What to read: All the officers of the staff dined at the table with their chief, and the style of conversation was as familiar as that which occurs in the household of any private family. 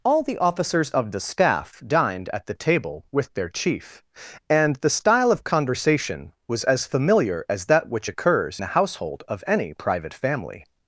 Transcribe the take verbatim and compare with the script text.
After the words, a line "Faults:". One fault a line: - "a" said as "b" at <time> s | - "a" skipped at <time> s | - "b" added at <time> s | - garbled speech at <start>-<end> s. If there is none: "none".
All the officers of the staff dined at the table with their chief, and the style of conversation was as familiar as that which occurs the household of any private family.
Faults:
- "in" skipped at 8.6 s